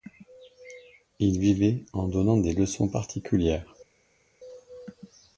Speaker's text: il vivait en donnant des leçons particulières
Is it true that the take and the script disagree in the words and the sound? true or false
false